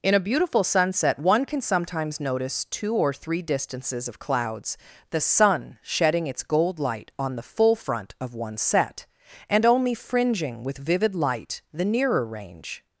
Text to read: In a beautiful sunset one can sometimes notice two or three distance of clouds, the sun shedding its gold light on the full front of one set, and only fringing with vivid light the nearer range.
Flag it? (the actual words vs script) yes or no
yes